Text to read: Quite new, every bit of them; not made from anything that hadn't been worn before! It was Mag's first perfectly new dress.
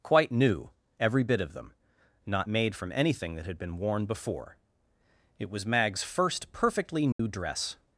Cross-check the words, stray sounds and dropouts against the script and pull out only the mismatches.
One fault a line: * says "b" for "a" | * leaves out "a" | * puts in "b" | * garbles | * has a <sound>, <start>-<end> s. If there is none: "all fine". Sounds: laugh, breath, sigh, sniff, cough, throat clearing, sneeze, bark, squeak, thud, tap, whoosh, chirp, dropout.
* says "had" for "hadn't"
* has a dropout, 7.1-7.2 s